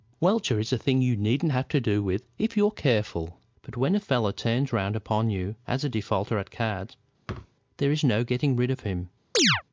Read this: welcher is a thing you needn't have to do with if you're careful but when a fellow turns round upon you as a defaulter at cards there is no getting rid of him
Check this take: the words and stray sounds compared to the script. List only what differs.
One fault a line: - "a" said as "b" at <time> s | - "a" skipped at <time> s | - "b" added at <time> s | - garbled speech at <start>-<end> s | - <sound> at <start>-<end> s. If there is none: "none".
- thud at 7.3-7.5 s
- chirp at 9.3-9.6 s